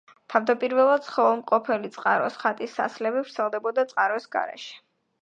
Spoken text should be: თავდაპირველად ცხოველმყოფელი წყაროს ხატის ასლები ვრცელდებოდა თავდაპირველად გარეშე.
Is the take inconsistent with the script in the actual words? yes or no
yes